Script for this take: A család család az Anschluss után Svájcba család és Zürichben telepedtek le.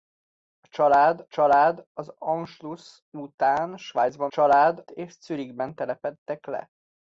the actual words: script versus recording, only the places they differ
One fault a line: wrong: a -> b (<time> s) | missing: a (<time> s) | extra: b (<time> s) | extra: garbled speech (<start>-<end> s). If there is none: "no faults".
no faults